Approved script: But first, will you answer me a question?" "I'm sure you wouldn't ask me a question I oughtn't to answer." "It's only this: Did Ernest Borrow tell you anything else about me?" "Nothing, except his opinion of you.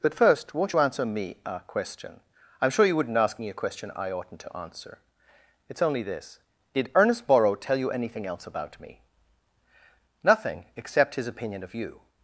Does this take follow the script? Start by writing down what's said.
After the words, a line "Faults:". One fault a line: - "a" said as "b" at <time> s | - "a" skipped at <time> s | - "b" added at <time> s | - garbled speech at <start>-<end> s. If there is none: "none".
But first, won't you answer me a question?" "I'm sure you wouldn't ask me a question I oughtn't to answer." "It's only this: Did Ernest Borrow tell you anything else about me?" "Nothing, except his opinion of you.
Faults:
- "will" said as "won't" at 0.5 s